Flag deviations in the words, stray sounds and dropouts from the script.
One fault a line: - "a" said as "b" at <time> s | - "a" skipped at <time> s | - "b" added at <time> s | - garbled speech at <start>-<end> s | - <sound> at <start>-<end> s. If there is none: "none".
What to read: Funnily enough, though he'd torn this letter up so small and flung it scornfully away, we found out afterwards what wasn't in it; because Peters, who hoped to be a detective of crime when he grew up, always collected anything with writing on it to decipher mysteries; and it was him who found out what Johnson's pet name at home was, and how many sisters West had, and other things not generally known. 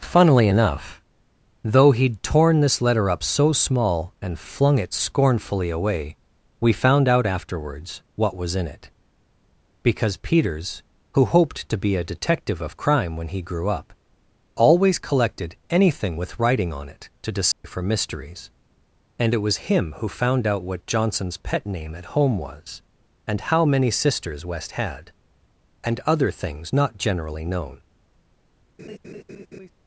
- "wasn't" said as "was" at 8.4 s
- dropout at 17.5-17.6 s
- laugh at 28.8-29.7 s